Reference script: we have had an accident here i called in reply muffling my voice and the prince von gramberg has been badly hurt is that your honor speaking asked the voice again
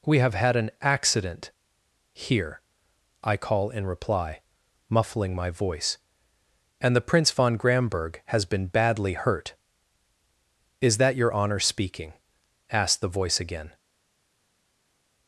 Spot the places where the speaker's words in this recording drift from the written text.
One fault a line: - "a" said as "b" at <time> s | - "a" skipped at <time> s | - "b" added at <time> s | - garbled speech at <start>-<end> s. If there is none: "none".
- "called" said as "call" at 3.4 s